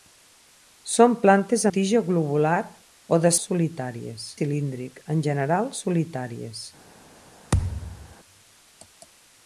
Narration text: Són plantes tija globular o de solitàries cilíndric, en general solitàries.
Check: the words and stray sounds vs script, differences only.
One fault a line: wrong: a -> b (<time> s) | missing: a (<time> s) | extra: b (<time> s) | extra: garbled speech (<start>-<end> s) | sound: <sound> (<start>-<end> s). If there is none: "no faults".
sound: thud (7.5-8.1 s)